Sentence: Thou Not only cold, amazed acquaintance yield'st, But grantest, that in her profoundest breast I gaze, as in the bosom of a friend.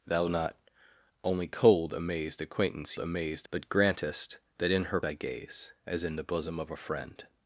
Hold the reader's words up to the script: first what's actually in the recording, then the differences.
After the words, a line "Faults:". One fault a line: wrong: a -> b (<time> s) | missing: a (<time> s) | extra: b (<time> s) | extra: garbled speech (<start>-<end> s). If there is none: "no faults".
Thou Not only cold, amazed acquaintance amazed, But grantest, that in her I gaze, as in the bosom of a friend.
Faults:
wrong: yield'st -> amazed (3.0 s)
missing: profoundest breast (5.0 s)